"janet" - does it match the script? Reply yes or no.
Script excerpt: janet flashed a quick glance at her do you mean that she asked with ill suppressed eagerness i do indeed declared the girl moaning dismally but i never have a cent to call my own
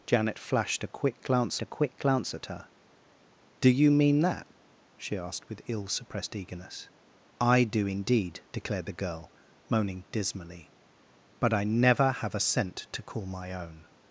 yes